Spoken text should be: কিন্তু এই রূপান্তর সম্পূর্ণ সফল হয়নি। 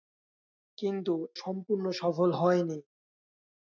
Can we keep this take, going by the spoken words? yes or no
no